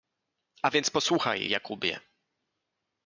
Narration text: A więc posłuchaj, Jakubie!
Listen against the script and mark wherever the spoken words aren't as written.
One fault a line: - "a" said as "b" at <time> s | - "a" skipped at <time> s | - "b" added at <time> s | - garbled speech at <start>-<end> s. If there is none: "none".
none